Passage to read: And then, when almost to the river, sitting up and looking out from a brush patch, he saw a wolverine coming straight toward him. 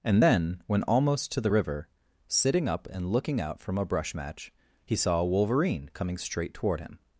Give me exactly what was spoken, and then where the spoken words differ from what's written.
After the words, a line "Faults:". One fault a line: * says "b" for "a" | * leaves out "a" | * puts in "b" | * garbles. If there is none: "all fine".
And then, when almost to the river, sitting up and looking out from a brush match, he saw a wolverine coming straight toward him.
Faults:
* says "match" for "patch"